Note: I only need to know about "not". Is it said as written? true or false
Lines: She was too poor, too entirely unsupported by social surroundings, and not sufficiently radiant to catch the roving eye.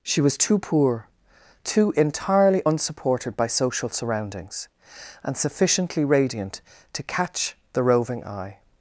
false